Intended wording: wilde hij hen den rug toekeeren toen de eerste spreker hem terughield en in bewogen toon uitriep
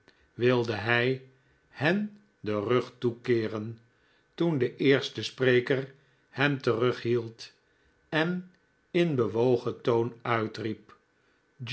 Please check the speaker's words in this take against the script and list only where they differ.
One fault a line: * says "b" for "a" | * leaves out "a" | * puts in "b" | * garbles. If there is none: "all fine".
all fine